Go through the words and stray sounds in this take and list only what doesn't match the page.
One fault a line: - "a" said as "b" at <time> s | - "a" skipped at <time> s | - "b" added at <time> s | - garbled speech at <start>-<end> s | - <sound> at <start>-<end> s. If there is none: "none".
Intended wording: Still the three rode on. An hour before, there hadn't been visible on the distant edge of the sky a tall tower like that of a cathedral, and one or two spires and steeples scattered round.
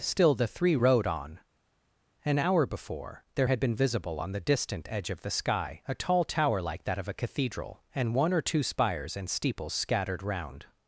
- "hadn't" said as "had" at 3.5 s